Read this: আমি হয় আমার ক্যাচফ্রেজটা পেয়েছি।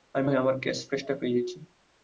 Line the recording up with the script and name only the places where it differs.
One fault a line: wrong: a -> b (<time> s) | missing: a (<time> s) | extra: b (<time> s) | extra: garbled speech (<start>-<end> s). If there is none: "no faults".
no faults